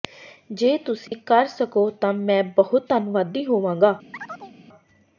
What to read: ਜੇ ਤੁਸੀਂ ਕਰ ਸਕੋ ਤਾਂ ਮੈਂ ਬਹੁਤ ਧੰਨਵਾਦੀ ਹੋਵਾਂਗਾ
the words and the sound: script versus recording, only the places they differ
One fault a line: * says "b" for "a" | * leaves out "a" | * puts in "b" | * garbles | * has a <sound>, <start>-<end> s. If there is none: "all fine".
* has a dropout, 1.1-1.1 s
* has a chirp, 4.1-4.5 s